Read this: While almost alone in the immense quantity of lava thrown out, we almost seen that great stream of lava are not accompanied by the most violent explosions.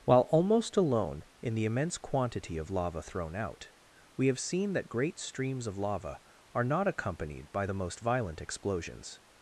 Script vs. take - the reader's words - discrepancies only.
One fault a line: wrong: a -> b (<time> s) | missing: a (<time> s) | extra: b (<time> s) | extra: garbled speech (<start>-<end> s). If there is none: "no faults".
wrong: almost -> have (4.3 s)
wrong: stream -> streams (5.2 s)